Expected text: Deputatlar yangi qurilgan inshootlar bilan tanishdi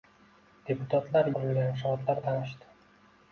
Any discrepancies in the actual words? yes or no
yes